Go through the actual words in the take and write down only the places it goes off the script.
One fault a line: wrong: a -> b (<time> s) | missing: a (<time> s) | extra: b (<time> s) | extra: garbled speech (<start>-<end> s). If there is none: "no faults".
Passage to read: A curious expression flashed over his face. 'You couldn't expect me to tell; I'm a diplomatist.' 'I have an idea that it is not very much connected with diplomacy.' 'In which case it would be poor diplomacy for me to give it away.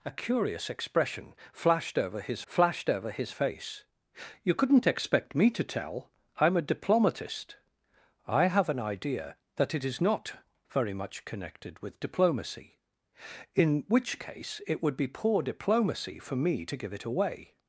extra: flashed over his (2.5 s)